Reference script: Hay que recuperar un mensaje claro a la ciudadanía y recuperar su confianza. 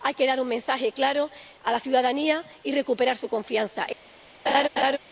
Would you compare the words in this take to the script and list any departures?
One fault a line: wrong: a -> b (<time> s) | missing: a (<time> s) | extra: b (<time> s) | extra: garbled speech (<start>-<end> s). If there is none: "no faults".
wrong: recuperar -> dar (0.2 s)